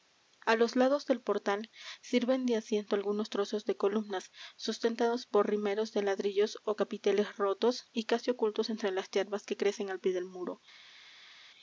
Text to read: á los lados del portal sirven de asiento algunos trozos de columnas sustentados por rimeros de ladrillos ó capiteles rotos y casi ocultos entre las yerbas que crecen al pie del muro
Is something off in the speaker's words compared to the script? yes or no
no